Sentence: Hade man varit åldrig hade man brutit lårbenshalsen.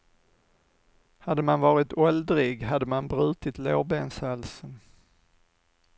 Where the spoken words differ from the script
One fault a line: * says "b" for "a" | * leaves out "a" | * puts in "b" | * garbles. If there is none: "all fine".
all fine